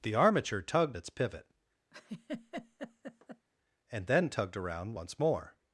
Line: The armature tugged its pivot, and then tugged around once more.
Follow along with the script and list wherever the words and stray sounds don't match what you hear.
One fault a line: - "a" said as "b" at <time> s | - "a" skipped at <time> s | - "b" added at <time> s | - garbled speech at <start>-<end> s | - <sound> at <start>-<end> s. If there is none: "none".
- laugh at 1.9-3.5 s